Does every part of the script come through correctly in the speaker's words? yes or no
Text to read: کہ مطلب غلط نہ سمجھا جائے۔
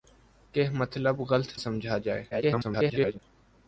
no